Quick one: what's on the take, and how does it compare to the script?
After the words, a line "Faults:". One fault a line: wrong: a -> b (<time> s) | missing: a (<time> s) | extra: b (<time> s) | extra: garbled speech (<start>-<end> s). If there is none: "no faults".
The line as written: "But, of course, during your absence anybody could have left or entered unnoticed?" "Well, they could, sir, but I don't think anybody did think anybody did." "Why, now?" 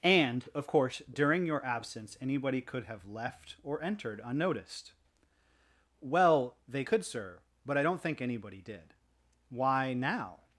"And, of course, during your absence anybody could have left or entered unnoticed?" "Well, they could, sir, but I don't think anybody did." "Why, now?"
Faults:
wrong: But -> And (0.0 s)
missing: think anybody did (8.9 s)